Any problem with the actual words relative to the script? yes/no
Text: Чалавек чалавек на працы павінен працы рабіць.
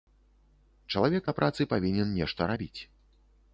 yes